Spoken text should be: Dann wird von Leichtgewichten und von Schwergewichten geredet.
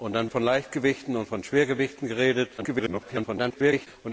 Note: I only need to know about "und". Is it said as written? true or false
true